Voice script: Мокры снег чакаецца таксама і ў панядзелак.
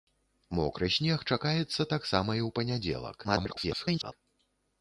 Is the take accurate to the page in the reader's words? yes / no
no